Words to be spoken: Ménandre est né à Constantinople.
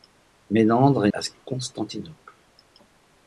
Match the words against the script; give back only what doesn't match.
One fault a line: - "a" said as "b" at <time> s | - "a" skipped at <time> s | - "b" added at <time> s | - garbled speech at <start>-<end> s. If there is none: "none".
- "né" skipped at 1.1 s